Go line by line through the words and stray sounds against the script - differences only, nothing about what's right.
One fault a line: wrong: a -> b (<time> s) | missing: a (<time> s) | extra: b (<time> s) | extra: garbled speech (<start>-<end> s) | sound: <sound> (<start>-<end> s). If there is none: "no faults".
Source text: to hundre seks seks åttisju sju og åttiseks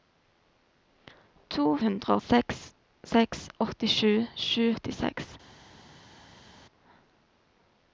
no faults